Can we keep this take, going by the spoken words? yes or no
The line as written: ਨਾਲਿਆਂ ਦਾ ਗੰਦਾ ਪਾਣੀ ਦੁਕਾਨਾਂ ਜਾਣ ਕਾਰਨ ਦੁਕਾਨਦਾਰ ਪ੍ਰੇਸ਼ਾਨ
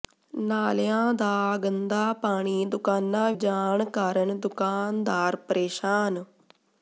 yes